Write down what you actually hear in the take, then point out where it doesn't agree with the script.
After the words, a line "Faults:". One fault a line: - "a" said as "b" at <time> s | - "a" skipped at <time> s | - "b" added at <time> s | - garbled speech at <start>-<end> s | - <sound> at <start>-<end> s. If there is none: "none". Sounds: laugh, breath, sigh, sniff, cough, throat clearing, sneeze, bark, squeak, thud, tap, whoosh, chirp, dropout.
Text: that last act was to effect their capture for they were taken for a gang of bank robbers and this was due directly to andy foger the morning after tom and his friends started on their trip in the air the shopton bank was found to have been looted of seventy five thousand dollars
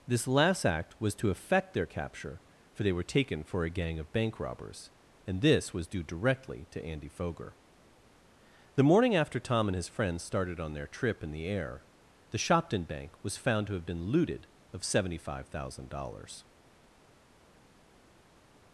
this last act was to effect their capture for they were taken for a gang of bank robbers and this was due directly to andy foger the morning after tom and his friends started on their trip in the air the shopton bank was found to have been looted of seventy five thousand dollars
Faults:
- "that" said as "this" at 0.1 s